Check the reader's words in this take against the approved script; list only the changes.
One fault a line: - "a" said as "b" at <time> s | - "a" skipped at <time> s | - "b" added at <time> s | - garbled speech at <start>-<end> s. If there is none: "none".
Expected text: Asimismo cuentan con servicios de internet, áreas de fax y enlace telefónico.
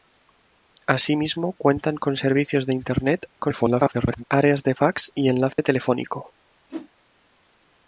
- garbled speech at 3.4-4.2 s